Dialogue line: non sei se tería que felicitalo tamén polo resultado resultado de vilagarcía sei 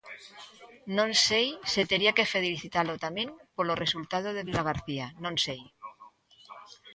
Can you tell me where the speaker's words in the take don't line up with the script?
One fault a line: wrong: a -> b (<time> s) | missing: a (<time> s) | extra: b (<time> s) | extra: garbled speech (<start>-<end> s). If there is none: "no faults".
missing: resultado (4.3 s)
extra: non (5.2 s)